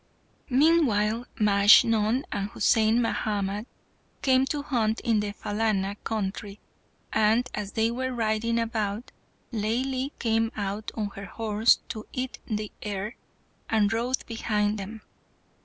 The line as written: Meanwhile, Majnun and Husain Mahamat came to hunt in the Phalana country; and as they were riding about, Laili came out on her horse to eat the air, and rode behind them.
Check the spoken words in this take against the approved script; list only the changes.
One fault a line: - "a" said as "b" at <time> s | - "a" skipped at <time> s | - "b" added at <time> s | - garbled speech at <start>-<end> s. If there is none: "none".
none